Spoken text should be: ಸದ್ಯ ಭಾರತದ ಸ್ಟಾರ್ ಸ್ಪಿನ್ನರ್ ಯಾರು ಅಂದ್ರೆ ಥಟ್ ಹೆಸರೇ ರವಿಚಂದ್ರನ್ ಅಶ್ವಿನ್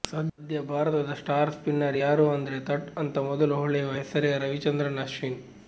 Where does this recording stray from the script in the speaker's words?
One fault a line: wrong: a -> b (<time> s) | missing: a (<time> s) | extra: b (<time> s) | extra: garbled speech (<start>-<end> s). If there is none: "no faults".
extra: ಅಂತ ಮೊದಲು ಹೊಳೆಯುವ (3.0 s)